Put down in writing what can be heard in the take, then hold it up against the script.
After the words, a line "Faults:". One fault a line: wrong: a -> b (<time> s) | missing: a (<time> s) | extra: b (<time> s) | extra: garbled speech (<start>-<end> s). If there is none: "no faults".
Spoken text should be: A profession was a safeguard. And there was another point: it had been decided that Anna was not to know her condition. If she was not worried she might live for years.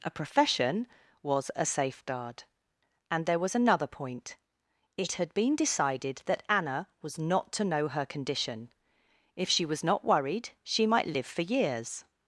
A profession was a safeguard. And there was another point: it had been decided that Anna was not to know her condition. If she was not worried she might live for years.
Faults:
no faults